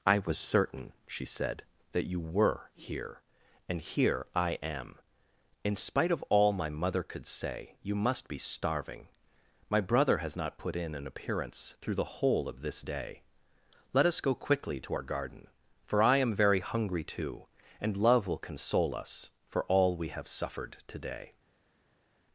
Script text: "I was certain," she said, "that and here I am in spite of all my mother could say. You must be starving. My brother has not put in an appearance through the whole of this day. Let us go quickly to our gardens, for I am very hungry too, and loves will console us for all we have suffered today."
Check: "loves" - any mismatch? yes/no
yes